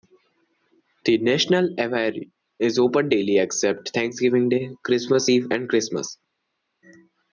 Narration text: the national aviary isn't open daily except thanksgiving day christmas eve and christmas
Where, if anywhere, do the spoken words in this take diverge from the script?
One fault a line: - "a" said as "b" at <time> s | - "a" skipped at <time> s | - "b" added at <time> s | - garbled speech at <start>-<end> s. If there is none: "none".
- "isn't" said as "is" at 2.6 s